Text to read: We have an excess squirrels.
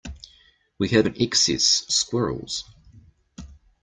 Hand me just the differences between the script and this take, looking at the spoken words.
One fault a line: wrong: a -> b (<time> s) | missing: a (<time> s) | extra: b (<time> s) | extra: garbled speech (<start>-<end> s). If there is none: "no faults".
no faults